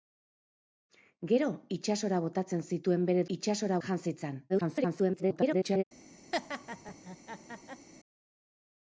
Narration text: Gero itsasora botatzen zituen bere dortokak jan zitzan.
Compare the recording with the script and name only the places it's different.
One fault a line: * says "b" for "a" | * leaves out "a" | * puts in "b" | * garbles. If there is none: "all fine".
* says "itsasora" for "dortokak"
* garbles